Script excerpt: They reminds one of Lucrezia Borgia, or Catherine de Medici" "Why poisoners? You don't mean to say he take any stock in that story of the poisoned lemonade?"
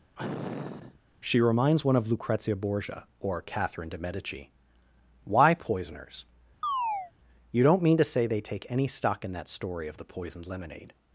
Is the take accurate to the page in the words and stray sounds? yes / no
no